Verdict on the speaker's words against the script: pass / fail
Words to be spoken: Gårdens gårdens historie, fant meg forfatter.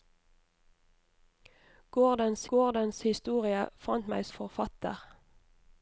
pass